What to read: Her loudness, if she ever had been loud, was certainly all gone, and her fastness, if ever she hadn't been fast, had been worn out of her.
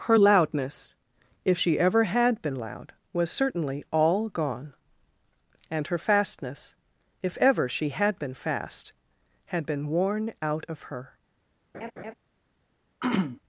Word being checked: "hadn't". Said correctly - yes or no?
no